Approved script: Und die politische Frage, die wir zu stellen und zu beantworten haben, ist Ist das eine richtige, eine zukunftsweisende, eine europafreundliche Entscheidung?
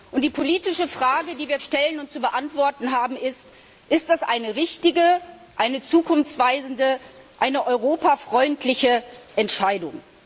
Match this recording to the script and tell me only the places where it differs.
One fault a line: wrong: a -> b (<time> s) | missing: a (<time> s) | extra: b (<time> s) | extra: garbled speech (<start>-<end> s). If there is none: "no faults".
missing: zu (1.6 s)